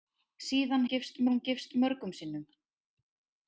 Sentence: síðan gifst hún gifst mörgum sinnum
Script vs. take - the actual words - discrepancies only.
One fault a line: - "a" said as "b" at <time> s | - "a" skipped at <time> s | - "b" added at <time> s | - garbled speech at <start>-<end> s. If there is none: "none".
none